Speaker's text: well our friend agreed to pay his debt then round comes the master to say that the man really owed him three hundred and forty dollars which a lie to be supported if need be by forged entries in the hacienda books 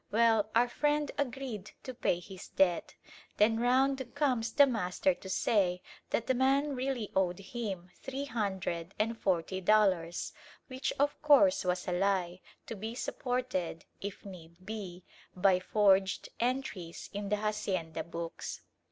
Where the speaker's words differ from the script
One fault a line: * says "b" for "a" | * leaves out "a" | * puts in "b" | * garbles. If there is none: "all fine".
* puts in "of course was"